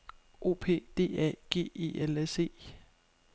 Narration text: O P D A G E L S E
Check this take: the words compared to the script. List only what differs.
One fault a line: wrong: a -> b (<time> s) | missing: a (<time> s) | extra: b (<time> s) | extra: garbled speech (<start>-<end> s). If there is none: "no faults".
no faults